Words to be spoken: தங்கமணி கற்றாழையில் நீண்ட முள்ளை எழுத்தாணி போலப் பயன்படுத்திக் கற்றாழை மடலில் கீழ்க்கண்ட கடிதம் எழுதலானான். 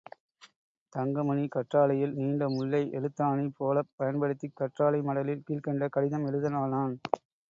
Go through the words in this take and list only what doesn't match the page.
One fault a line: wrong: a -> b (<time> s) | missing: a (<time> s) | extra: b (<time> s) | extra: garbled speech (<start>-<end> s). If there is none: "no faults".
no faults